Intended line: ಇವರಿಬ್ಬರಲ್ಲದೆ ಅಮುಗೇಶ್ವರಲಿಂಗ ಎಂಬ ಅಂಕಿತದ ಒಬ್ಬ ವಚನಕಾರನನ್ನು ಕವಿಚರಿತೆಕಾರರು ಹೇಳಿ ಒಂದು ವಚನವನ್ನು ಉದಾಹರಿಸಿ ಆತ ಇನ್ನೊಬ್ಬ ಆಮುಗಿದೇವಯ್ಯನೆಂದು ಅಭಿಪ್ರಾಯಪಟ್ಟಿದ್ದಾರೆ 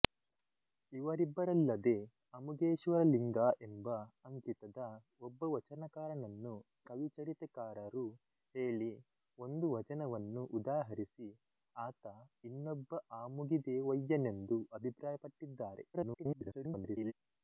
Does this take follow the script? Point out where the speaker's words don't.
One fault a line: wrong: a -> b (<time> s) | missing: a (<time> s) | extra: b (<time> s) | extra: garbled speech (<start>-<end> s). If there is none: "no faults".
extra: garbled speech (15.9-17.1 s)